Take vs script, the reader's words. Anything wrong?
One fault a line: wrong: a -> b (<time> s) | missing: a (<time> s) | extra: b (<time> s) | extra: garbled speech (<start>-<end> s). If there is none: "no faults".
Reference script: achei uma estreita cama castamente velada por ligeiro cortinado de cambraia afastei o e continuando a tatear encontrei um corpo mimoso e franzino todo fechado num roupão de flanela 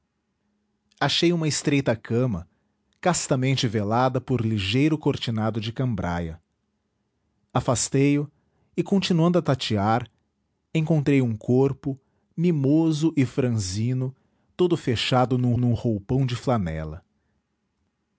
extra: num (15.6 s)